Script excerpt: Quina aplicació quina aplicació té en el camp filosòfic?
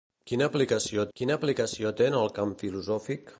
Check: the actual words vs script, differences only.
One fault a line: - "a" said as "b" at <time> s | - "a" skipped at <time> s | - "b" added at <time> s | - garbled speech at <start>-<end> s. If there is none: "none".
none